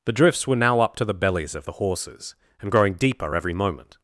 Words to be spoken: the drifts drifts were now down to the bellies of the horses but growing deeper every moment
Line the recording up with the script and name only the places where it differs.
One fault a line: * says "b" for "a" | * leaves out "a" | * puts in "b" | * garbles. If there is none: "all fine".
* leaves out "drifts"
* says "up" for "down"
* says "and" for "but"